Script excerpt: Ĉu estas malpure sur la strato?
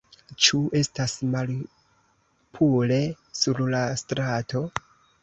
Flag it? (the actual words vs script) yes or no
no